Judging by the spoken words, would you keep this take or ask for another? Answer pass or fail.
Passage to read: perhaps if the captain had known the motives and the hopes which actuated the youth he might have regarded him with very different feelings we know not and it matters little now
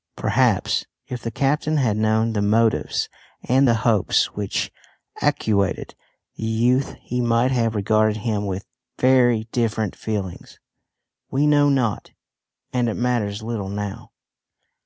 pass